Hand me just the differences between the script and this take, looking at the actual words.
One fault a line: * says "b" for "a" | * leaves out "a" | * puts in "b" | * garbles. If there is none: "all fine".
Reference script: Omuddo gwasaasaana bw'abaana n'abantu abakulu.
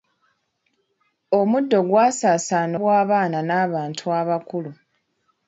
all fine